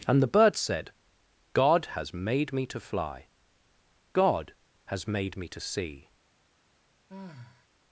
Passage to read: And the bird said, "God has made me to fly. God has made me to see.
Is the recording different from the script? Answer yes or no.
no